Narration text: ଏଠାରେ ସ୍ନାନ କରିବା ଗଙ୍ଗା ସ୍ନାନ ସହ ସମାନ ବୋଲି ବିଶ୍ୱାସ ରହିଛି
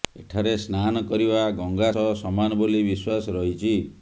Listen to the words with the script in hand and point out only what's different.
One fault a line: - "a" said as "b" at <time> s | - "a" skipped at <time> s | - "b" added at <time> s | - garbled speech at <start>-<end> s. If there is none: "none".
- "ସ୍ନାନ" skipped at 1.9 s